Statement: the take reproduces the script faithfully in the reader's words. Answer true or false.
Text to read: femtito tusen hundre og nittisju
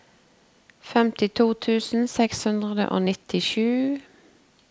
false